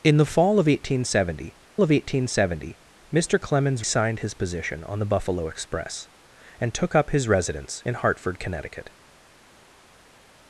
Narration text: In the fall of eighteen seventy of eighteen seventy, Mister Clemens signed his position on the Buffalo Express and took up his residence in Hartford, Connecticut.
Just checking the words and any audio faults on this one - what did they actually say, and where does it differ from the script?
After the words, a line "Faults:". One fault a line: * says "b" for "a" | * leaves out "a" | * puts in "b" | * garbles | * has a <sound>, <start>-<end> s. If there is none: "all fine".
In the fall of eighteen seventy of eighteen seventy, Mister Clemens signed his position on the Buffalo Express and took up his residence in Hartford, Connecticut.
Faults:
all fine